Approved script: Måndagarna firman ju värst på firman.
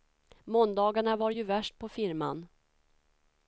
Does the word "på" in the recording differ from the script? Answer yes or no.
no